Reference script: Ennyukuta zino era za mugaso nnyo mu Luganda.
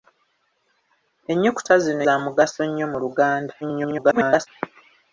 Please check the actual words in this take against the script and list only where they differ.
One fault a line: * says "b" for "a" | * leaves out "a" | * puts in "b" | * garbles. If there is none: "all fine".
* leaves out "era"
* garbles